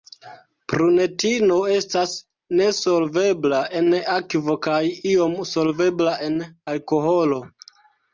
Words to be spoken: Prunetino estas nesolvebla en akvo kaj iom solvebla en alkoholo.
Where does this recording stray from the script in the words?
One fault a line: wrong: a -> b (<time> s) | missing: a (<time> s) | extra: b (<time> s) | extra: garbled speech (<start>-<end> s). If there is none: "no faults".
no faults